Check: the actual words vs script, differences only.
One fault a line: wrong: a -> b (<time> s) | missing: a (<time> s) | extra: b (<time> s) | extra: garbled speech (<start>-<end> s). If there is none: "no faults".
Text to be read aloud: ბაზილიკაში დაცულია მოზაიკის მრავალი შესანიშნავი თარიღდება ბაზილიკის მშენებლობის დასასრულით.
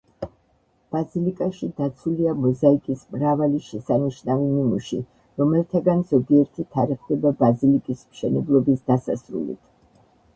extra: ნიმუში რომელთაგან ზოგიერთი (4.5 s)